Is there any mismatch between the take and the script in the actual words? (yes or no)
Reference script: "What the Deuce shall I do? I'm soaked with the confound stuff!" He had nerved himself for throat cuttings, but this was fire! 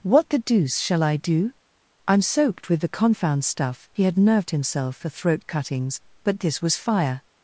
no